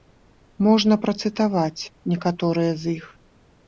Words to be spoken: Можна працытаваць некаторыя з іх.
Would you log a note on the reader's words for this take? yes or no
no